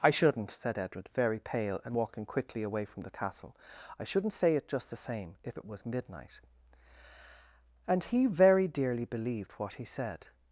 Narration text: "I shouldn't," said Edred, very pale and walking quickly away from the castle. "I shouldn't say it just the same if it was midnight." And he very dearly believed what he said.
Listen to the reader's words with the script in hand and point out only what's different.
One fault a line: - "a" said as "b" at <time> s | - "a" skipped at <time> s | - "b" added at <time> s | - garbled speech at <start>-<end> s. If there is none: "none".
none